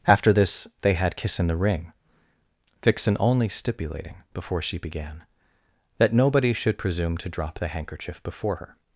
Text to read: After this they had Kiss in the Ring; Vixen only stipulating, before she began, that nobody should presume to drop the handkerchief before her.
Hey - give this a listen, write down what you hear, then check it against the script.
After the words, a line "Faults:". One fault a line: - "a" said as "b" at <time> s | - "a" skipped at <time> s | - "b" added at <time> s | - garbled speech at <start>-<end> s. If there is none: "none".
After this they had Kiss in the Ring; Vixen only stipulating, before she began, that nobody should presume to drop the handkerchief before her.
Faults:
none